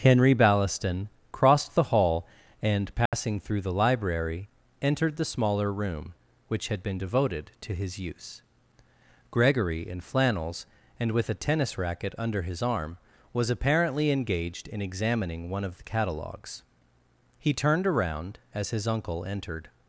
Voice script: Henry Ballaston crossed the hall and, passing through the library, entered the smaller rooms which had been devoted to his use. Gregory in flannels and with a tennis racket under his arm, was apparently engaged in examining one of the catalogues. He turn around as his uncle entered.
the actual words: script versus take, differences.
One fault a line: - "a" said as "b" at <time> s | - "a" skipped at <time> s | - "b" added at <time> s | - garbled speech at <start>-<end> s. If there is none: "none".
- "rooms" said as "room" at 5.7 s
- "turn" said as "turned" at 17.5 s